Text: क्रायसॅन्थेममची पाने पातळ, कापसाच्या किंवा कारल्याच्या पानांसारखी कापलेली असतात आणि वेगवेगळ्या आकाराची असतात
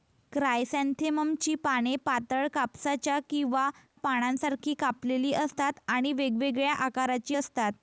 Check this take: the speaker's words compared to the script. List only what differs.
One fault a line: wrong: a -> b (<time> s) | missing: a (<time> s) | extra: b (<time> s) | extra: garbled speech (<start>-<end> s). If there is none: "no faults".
missing: कारल्याच्या (3.7 s)